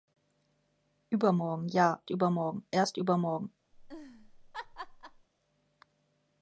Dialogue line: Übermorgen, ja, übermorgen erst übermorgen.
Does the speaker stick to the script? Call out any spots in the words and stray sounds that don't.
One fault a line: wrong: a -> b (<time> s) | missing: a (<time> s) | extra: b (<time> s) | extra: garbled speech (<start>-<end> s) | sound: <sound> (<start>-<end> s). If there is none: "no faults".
sound: laugh (3.7-5.3 s)